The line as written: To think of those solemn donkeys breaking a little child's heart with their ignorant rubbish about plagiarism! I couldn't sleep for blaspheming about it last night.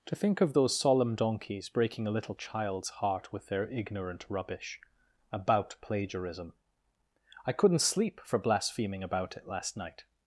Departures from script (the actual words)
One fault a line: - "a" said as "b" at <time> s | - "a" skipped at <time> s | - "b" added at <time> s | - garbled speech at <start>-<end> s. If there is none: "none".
none